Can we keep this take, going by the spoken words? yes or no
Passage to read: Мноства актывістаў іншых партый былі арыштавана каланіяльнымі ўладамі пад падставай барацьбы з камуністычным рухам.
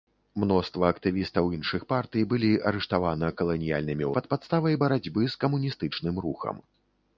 no